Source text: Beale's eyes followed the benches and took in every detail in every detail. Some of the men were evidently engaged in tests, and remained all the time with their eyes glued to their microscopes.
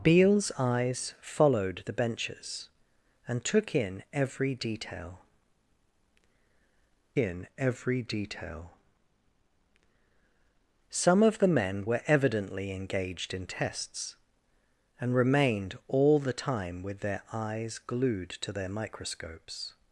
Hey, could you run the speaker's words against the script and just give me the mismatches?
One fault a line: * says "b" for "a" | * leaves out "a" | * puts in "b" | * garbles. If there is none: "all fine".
all fine